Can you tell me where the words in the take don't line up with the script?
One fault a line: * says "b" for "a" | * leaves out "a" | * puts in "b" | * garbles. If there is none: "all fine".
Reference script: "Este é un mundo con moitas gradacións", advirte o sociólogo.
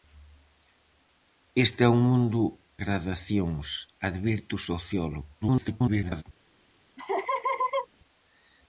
* leaves out "con moitas"
* garbles